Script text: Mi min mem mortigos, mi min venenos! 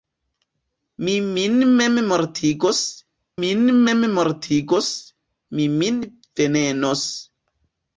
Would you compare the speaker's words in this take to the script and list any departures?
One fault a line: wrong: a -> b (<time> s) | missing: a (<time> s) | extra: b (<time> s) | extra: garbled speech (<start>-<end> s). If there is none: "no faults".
extra: min mem mortigos (3.4 s)